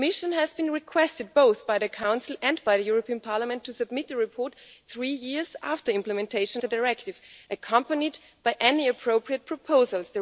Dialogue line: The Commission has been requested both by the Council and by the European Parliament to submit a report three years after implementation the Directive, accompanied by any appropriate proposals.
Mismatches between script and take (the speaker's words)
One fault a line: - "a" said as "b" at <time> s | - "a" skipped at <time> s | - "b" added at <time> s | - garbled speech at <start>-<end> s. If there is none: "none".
none